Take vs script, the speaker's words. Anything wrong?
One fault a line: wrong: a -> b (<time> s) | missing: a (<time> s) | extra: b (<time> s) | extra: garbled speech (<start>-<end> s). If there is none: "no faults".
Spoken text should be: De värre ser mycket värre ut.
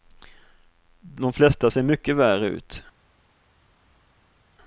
wrong: värre -> flesta (1.3 s)